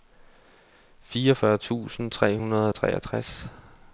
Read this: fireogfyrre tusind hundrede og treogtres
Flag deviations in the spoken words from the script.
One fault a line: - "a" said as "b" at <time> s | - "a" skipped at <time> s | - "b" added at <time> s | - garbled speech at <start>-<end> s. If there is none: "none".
- "tre" added at 2.1 s